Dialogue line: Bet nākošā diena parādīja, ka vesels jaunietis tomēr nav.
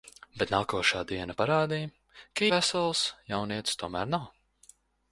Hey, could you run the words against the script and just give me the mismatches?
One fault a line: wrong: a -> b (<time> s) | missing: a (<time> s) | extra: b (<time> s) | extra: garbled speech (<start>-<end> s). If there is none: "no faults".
no faults